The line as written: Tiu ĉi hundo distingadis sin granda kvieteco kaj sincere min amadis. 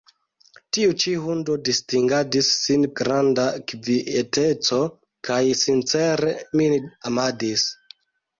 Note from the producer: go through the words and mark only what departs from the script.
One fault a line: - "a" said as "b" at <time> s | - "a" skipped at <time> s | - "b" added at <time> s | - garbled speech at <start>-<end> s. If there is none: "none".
none